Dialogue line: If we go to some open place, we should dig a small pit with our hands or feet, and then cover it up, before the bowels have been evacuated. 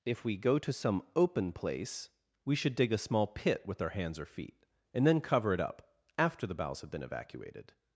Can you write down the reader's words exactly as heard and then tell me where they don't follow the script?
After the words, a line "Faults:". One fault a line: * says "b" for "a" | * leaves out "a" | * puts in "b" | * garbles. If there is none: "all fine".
If we go to some open place, we should dig a small pit with our hands or feet, and then cover it up, after the bowels have been evacuated.
Faults:
* says "after" for "before"